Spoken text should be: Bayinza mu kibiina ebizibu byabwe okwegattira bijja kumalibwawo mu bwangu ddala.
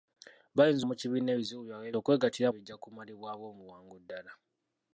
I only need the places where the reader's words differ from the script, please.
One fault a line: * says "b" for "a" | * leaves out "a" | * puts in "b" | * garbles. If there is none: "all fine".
all fine